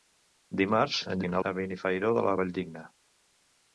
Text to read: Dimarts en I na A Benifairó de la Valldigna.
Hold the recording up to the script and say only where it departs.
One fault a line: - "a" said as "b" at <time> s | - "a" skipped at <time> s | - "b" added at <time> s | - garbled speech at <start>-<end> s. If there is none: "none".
none